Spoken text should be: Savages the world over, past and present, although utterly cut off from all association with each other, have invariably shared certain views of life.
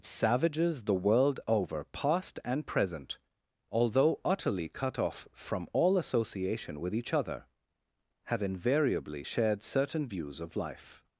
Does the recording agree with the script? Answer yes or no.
yes